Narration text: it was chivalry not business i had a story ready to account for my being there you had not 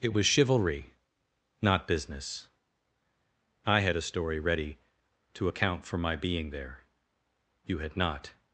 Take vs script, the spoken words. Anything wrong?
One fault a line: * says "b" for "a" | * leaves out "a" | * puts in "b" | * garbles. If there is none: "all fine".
all fine